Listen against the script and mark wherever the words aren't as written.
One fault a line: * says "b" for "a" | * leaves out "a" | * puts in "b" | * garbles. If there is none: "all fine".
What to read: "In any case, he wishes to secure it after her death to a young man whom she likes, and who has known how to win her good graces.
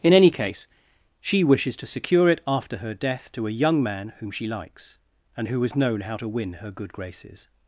* says "she" for "he"